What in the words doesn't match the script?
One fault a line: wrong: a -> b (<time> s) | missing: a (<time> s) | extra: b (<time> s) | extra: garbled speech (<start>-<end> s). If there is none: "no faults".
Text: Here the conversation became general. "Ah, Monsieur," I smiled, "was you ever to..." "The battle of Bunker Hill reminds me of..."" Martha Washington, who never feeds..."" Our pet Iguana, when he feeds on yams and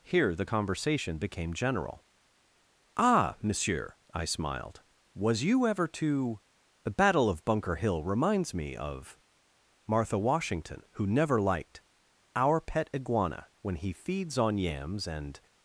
wrong: feeds -> liked (11.4 s)